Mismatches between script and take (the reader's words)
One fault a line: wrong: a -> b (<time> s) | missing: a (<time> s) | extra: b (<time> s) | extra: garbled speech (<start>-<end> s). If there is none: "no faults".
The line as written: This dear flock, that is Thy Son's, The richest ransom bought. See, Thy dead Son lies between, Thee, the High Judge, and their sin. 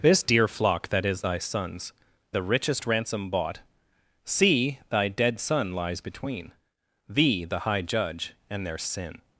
no faults